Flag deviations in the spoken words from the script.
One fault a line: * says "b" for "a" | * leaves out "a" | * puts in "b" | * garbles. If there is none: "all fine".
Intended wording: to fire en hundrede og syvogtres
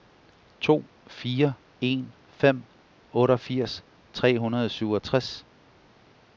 * puts in "fem otteogfirs tre"